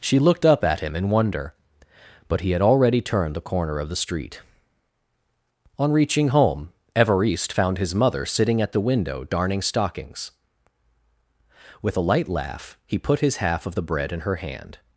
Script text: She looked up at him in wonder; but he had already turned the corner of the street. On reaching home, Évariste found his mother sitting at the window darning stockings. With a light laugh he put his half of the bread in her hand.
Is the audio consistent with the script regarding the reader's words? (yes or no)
yes